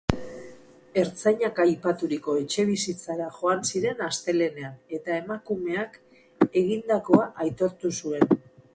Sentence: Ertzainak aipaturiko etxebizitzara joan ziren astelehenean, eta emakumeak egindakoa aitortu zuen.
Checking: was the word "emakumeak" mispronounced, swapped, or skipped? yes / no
no